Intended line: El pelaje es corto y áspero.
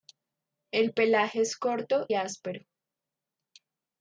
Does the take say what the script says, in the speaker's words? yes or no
no